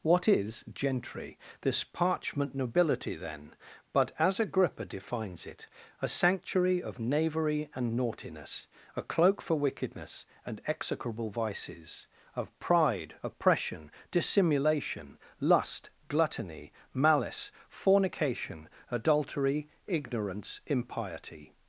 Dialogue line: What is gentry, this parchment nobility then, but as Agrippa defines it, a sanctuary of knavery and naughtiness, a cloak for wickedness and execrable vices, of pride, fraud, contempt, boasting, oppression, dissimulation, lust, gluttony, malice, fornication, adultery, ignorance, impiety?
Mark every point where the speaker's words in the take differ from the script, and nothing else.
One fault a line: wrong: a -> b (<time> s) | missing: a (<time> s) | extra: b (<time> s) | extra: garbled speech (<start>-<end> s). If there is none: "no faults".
missing: fraud contempt boasting (13.2 s)